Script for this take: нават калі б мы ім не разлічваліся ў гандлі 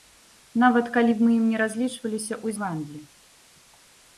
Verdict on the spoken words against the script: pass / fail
pass